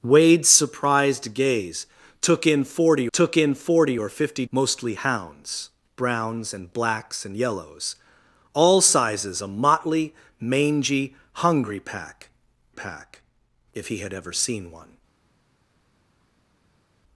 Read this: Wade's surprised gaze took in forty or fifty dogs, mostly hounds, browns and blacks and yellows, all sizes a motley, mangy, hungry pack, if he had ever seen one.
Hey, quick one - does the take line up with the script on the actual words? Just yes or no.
no